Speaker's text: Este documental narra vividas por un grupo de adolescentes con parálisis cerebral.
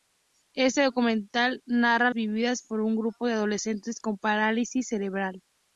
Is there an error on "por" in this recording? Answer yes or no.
no